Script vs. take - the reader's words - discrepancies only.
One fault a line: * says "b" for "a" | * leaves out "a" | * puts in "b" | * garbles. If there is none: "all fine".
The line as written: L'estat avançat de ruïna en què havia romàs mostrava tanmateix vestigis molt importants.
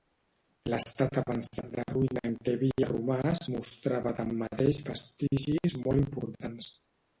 all fine